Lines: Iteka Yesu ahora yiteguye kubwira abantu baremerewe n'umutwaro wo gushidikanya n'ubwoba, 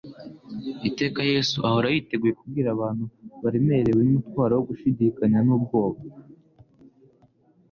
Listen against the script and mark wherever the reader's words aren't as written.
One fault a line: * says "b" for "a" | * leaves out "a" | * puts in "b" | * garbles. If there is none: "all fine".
all fine